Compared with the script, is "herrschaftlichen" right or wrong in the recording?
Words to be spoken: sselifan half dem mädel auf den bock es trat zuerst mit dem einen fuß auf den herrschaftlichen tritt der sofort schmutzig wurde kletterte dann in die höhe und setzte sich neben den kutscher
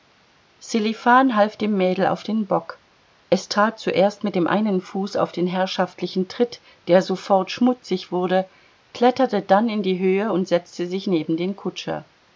right